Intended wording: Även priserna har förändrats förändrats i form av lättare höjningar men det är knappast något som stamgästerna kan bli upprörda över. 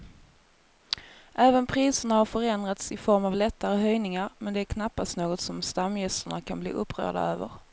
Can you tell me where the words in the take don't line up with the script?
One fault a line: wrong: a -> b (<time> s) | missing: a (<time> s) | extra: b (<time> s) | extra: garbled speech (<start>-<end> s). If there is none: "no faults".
missing: förändrats (2.9 s)